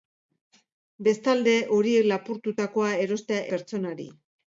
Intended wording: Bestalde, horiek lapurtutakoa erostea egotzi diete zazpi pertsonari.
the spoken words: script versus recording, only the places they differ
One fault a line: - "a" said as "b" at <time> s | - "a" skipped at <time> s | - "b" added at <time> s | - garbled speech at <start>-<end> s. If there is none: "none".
- "egotzi diete zazpi" skipped at 3.5 s